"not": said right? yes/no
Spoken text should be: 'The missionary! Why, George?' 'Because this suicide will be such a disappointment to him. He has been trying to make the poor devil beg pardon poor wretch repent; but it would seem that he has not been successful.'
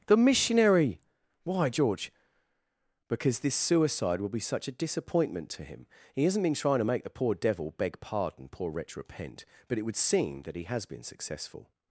no